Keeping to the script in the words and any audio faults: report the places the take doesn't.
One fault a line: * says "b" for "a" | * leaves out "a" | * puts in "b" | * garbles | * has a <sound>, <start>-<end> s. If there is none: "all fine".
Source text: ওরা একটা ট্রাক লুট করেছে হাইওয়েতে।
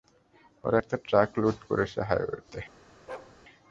* has a bark, 3.1-3.4 s